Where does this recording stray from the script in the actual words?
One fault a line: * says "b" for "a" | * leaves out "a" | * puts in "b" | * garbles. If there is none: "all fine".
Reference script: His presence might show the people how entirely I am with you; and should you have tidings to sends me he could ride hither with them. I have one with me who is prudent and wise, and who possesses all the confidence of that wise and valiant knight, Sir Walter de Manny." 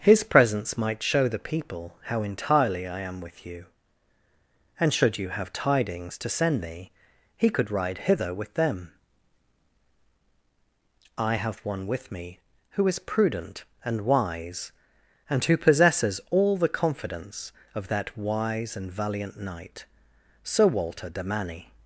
* says "send" for "sends"